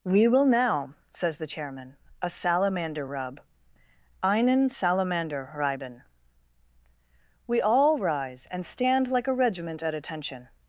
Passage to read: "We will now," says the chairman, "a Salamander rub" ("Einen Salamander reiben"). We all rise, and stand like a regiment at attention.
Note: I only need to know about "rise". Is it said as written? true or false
true